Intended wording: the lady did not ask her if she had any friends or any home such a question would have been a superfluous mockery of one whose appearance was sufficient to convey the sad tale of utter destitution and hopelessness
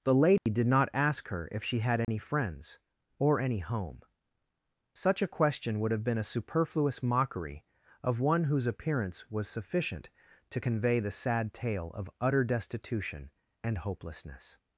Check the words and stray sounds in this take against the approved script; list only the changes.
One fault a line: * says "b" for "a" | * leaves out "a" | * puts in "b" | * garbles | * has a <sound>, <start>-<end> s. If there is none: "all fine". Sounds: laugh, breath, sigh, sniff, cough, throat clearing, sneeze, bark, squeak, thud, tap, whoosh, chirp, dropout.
* has a dropout, 0.4-0.5 s
* has a dropout, 2.0-2.1 s